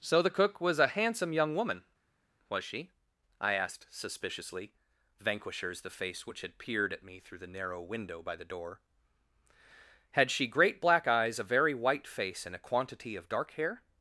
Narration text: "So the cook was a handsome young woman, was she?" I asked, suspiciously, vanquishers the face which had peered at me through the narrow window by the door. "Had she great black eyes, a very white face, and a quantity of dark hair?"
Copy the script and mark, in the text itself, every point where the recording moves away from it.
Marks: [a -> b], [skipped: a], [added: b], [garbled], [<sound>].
"So the cook was a handsome young woman, was she?" I asked, suspiciously, vanquishers the face which had peered at me through the narrow window by the door. "Had she great black eyes, a very white face, and a quantity of dark hair?"